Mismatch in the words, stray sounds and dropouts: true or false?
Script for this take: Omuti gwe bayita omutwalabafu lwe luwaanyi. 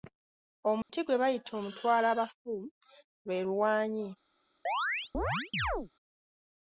true